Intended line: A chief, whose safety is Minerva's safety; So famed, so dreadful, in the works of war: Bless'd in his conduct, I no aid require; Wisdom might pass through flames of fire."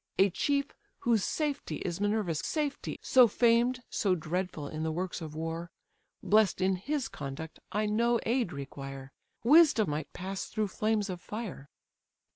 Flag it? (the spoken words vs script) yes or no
no